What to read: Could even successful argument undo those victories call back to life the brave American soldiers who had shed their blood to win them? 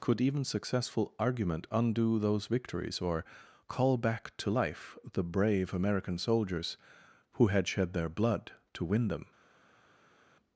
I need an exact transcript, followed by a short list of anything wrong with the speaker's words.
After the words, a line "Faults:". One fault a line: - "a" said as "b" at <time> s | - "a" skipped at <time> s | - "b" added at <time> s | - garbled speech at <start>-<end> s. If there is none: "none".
Could even successful argument undo those victories or call back to life the brave American soldiers who had shed their blood to win them?
Faults:
- "or" added at 3.0 s